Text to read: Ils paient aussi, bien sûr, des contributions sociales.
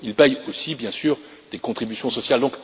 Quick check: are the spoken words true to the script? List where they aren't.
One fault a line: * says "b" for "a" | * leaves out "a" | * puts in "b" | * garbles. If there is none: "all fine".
all fine